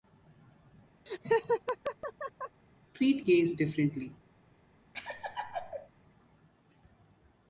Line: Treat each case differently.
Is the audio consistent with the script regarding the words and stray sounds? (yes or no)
no